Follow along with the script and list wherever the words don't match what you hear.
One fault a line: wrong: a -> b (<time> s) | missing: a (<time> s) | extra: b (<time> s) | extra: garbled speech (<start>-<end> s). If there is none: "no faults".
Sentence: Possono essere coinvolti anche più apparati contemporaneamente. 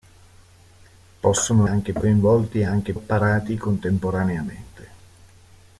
wrong: essere -> anche (1.6 s)
missing: più (2.9 s)